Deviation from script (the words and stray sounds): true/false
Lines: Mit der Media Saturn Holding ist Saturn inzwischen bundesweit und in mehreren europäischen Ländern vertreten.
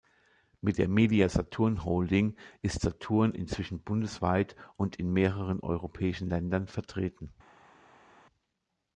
false